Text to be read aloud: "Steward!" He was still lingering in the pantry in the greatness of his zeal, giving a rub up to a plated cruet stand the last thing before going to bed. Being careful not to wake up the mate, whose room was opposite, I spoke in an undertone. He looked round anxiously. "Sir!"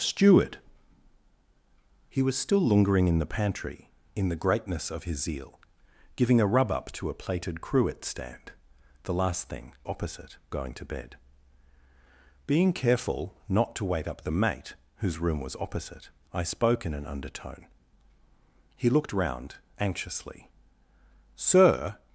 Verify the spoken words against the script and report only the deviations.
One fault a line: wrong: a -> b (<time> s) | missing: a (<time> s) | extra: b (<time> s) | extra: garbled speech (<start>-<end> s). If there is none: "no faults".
wrong: before -> opposite (9.8 s)